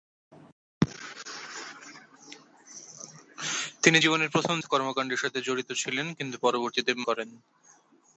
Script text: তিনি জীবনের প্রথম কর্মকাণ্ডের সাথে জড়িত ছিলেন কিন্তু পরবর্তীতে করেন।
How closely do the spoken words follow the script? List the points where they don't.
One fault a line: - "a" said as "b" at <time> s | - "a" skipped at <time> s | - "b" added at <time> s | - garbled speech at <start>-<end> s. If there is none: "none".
none